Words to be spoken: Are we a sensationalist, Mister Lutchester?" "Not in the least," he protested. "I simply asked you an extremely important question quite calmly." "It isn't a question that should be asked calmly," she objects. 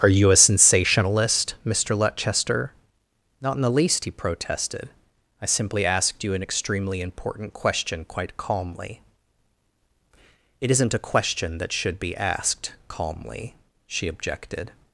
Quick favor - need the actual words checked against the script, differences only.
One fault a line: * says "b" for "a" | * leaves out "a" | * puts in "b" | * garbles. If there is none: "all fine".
* says "you" for "we"
* says "objected" for "objects"